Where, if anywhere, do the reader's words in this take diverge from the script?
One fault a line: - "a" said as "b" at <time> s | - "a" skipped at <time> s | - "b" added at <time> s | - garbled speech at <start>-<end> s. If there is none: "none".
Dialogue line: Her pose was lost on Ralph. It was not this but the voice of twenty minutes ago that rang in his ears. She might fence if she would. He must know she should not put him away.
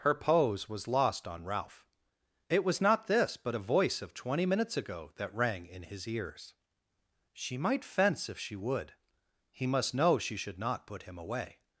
- "the" said as "a" at 3.5 s